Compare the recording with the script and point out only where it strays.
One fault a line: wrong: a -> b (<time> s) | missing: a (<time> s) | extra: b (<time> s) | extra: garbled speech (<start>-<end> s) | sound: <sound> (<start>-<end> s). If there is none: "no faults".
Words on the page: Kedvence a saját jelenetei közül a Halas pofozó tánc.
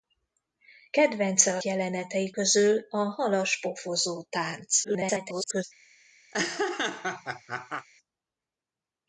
missing: saját (1.6 s)
extra: garbled speech (4.8-5.6 s)
sound: laugh (6.3-7.9 s)